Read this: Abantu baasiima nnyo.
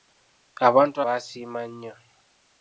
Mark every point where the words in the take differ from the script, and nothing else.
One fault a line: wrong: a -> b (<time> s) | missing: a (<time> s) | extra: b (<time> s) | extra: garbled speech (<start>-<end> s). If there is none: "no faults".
no faults